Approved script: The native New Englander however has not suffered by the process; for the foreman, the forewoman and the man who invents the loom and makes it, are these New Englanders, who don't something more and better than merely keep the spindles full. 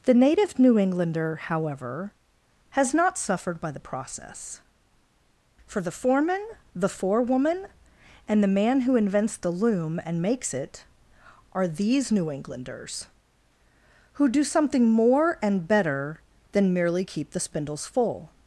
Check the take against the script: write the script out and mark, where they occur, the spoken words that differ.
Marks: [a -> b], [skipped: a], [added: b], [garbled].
The native New Englander however has not suffered by the process; for the foreman, the forewoman and the man who invents the loom and makes it, are these New Englanders, who [don't -> do] something more and better than merely keep the spindles full.